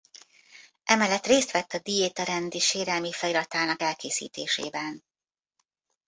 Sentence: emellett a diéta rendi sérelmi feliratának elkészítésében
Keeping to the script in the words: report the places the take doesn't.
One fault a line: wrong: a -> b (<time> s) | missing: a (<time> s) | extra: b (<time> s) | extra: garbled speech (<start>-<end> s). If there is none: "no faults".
extra: részt vett (1.2 s)